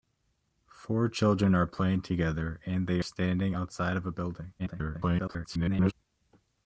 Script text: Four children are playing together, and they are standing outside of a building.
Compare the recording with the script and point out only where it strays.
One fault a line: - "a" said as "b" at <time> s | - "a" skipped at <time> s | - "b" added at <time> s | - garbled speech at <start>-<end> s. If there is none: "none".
- "are" skipped at 3.0 s
- garbled speech at 4.6-5.9 s